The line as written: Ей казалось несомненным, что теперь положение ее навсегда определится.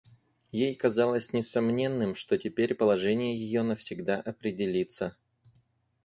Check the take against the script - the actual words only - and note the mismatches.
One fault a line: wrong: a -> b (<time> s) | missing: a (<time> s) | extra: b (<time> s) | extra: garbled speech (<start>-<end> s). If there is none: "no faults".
no faults